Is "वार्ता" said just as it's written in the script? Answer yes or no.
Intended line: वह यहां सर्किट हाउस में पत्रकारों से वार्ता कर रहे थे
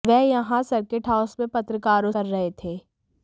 no